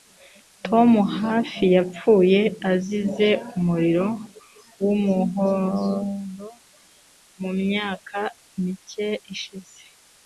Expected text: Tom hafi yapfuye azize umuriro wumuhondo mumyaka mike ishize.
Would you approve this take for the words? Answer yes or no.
yes